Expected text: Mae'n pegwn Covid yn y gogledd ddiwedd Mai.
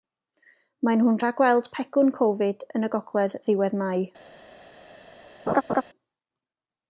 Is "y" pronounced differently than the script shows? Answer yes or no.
no